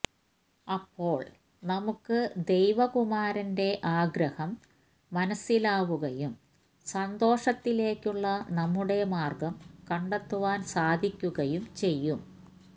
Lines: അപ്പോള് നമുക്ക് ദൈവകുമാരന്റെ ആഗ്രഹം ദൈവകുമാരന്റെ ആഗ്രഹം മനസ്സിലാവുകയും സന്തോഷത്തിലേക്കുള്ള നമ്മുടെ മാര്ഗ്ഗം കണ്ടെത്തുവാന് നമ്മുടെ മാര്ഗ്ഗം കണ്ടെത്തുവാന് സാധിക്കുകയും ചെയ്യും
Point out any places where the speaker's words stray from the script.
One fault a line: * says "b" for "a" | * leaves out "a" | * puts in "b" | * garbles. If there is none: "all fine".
* leaves out "ദൈവകുമാരന്റെ ആഗ്രഹം"
* leaves out "നമ്മുടെ മാര്ഗ്ഗം കണ്ടെത്തുവാന്"